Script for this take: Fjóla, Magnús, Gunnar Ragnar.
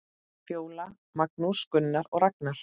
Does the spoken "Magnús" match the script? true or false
true